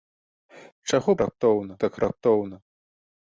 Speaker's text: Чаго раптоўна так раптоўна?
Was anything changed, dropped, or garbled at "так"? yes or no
no